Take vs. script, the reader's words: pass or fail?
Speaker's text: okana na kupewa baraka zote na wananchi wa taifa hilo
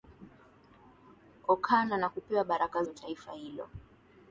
fail